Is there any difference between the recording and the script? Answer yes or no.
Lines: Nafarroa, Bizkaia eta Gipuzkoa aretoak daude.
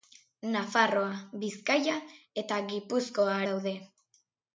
yes